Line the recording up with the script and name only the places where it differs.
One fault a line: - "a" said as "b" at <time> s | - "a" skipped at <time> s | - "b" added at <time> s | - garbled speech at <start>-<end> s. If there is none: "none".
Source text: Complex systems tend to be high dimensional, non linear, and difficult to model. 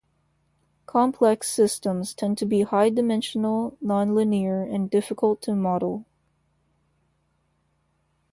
none